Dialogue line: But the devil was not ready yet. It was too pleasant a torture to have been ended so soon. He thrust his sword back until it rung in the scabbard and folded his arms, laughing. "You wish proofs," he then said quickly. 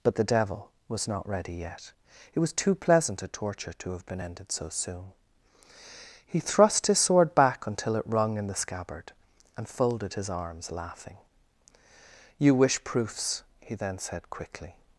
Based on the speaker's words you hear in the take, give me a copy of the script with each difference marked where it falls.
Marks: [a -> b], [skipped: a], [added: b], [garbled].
But the devil was not ready yet. It was too pleasant a torture to have been ended so soon. He thrust his sword back until it rung in the scabbard and folded his arms, laughing. "You wish proofs," he then said quickly.